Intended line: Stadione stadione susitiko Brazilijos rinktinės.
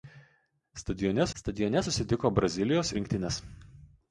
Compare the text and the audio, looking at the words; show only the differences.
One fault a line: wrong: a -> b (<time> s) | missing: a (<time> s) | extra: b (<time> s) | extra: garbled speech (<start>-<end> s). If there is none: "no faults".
no faults